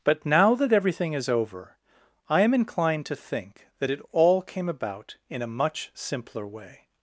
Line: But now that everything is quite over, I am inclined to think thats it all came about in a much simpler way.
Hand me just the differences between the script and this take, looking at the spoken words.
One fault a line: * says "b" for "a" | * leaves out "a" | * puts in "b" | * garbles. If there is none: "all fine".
* leaves out "quite"
* says "that" for "thats"